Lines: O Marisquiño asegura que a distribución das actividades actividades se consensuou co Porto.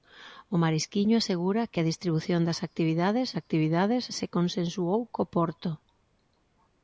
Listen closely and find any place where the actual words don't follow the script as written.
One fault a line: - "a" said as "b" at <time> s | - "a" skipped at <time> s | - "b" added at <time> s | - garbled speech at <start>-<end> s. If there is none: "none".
none